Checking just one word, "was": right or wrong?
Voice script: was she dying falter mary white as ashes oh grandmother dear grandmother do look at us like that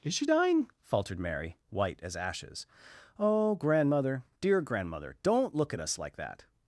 wrong